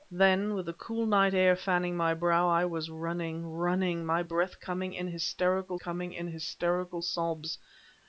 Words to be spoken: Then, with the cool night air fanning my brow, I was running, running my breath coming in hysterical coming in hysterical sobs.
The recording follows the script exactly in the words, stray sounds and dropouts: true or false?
true